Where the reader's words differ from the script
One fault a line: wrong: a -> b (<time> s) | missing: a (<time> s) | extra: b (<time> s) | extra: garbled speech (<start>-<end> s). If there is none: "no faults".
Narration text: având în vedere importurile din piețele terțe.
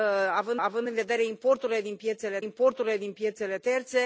extra: având (0.6 s)
extra: importurile din piețele (2.4 s)